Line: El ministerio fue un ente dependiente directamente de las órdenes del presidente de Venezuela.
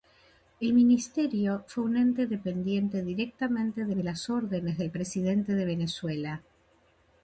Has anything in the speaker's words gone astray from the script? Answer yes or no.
yes